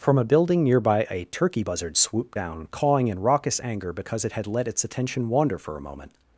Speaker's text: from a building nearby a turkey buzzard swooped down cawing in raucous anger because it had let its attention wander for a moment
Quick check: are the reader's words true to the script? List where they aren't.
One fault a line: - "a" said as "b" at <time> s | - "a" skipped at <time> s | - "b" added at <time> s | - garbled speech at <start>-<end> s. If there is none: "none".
none